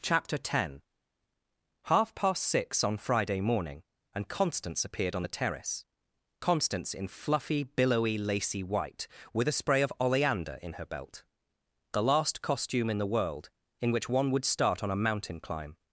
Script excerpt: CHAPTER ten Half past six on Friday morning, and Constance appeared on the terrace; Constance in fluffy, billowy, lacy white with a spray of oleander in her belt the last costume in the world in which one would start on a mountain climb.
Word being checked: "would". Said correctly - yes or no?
yes